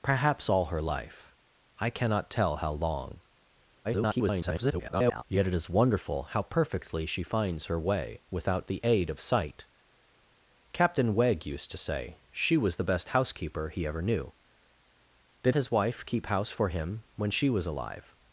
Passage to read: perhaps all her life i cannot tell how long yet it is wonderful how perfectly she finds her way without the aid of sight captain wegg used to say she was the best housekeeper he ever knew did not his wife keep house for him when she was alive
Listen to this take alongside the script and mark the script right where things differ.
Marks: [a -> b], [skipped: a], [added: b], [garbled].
perhaps all her life i cannot tell how long [garbled] yet it is wonderful how perfectly she finds her way without the aid of sight captain wegg used to say she was the best housekeeper he ever knew did [skipped: not] his wife keep house for him when she was alive